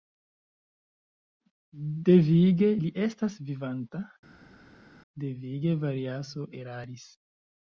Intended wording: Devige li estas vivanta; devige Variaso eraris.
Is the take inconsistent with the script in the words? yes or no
no